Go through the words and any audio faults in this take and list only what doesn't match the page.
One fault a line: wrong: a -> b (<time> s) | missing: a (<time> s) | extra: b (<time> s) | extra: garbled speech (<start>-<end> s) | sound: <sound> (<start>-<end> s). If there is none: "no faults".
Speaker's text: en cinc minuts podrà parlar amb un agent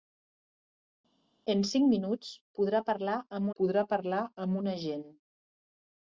extra: podrà parlar amb (3.6 s)